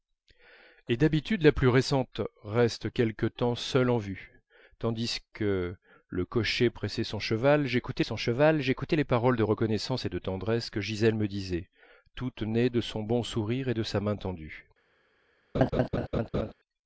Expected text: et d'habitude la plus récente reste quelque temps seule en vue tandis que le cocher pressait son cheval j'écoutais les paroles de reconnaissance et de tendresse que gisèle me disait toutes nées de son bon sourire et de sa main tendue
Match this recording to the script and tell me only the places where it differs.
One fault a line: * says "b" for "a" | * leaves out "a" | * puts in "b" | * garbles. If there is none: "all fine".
* puts in "son cheval j'écoutais"